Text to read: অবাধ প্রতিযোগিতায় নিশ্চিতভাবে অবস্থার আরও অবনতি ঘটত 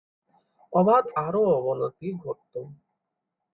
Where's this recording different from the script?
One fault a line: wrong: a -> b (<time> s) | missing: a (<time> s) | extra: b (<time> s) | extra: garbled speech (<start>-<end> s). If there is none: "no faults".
missing: প্রতিযোগিতায় নিশ্চিতভাবে অবস্থার (1.0 s)